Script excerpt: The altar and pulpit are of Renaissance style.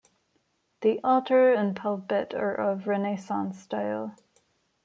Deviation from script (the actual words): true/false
false